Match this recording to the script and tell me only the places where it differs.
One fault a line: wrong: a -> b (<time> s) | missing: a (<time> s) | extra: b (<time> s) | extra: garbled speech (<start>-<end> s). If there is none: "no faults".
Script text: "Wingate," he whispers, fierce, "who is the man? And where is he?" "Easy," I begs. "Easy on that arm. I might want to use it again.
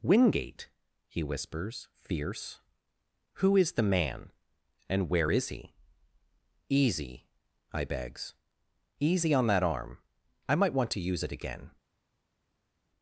no faults